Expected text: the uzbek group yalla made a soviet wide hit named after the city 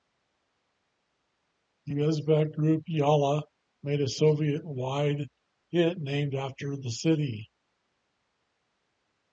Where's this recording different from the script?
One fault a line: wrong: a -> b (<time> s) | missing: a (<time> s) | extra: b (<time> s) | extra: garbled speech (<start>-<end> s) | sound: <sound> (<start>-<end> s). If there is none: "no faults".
no faults